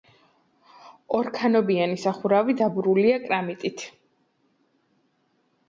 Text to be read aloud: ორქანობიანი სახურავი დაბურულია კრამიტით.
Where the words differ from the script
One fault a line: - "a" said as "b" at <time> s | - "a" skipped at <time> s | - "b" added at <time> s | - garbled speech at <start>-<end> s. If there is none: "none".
none